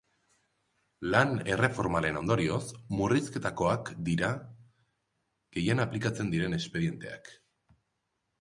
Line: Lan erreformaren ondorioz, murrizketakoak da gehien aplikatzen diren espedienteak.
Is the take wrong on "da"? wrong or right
wrong